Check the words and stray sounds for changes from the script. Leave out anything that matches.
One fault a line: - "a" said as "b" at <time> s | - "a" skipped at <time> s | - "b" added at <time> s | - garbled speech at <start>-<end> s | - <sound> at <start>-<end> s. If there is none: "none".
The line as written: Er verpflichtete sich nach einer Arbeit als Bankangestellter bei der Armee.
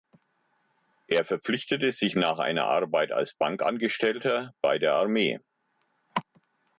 none